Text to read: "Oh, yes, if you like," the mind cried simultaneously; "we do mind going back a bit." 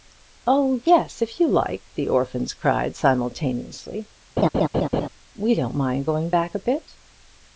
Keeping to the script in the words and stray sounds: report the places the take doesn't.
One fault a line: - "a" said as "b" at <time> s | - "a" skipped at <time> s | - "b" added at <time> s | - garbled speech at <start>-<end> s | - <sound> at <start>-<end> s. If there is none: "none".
- "mind" said as "orphans" at 2.1 s
- laugh at 4.4-5.1 s
- "do" said as "don't" at 5.5 s